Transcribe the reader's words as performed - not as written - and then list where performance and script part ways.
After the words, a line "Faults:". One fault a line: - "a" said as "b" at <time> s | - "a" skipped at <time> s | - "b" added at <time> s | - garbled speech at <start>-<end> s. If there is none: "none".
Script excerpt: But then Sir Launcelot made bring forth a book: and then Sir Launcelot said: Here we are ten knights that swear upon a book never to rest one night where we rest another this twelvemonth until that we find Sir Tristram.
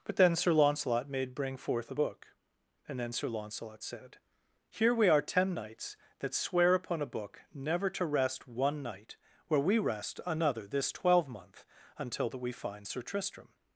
But then Sir Launcelot made bring forth a book: and then Sir Launcelot said: Here we are ten knights that swear upon a book never to rest one night where we rest another this twelvemonth until that we find Sir Tristram.
Faults:
none